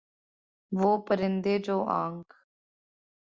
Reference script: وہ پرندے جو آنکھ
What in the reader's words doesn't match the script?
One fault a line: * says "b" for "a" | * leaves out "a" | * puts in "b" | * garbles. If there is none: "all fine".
all fine